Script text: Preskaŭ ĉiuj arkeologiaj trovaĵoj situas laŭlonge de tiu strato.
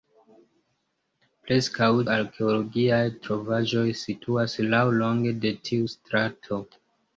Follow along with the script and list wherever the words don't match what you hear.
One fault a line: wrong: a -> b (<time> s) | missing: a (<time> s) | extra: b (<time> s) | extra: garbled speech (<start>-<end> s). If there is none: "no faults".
missing: ĉiuj (1.9 s)